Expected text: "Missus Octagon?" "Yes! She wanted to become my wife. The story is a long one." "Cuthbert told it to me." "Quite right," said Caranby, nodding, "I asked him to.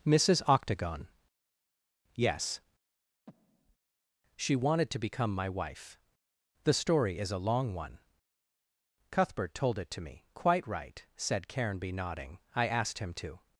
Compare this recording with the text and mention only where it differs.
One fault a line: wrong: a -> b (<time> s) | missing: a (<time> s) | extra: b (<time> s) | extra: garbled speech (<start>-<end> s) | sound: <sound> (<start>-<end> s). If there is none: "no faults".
sound: breath (3.3-3.8 s)